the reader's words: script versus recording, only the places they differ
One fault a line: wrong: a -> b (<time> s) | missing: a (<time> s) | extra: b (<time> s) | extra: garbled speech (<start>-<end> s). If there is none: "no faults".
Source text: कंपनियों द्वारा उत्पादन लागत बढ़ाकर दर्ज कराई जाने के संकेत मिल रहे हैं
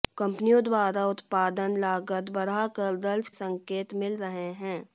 missing: कराई जाने के (3.3 s)